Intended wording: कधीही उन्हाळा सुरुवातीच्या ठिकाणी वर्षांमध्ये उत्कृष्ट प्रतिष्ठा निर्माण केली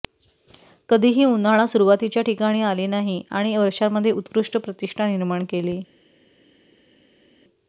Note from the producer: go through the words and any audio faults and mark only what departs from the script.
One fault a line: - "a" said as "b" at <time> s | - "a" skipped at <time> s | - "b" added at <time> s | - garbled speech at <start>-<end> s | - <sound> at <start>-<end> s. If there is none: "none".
- "आले नाही आणि" added at 2.6 s